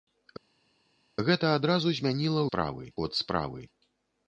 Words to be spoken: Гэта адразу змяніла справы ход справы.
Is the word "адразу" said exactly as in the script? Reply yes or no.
yes